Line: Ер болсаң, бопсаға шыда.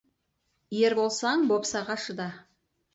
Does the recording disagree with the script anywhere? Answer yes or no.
no